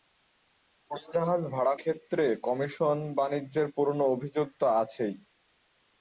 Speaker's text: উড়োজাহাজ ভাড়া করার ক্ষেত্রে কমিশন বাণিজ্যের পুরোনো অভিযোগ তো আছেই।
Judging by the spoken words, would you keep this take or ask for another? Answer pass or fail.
fail